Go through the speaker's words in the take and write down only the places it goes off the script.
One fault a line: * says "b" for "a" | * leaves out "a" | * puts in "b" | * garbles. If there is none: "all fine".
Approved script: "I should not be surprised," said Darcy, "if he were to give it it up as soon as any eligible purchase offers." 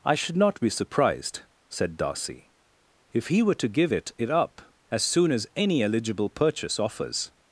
all fine